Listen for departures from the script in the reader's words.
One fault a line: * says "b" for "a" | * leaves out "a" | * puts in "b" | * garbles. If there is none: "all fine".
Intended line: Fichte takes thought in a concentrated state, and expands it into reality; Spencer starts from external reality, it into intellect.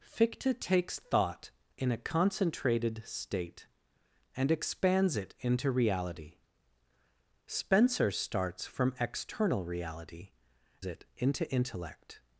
all fine